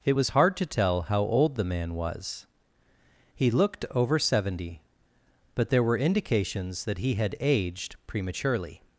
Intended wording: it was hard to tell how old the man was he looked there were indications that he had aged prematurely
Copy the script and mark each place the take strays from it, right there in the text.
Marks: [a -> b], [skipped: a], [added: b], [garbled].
it was hard to tell how old the man was he looked [added: over seventy but] there were indications that he had aged prematurely